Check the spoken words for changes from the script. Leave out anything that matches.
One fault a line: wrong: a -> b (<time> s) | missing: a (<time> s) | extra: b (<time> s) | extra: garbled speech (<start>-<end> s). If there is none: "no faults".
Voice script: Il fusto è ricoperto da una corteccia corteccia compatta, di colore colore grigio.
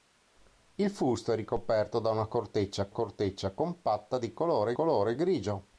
no faults